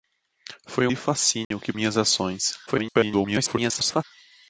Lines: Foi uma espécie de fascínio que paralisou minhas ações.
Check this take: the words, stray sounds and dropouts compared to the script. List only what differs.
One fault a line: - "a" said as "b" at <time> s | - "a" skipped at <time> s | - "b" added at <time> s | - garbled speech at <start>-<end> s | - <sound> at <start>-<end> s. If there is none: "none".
- "uma espécie" skipped at 0.9 s
- dropout at 1.4-1.5 s
- "paralisou" skipped at 1.7 s
- garbled speech at 2.7-4.0 s